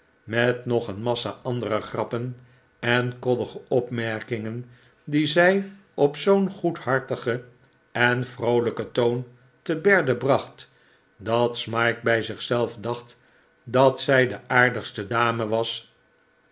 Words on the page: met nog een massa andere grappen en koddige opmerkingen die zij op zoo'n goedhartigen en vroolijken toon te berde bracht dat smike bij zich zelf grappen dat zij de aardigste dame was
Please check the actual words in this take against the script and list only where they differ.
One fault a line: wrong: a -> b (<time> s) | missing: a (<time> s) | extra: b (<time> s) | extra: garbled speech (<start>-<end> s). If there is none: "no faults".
wrong: grappen -> dacht (12.8 s)